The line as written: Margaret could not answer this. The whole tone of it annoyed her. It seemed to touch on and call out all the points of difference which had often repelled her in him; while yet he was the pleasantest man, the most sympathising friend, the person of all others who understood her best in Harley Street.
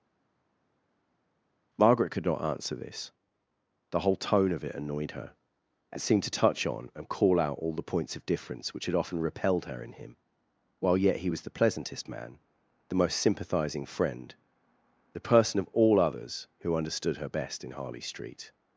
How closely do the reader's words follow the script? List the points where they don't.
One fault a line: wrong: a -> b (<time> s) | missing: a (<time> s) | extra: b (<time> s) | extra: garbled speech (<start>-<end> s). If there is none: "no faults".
no faults